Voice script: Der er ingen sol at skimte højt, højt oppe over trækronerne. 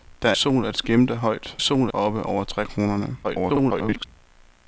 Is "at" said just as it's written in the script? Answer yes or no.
yes